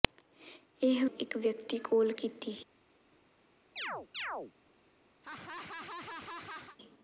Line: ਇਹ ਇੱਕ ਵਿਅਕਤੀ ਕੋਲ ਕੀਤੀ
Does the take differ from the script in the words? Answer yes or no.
no